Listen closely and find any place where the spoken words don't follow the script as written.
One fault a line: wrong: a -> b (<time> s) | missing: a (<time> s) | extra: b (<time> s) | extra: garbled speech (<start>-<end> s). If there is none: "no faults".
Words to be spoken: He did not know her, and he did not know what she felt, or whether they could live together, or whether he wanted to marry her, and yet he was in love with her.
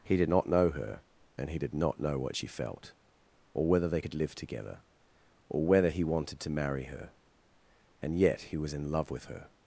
no faults